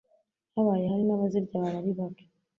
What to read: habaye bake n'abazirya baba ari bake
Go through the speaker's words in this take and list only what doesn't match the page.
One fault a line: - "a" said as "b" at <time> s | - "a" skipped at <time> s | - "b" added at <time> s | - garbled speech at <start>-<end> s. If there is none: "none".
- "bake" said as "hari" at 0.9 s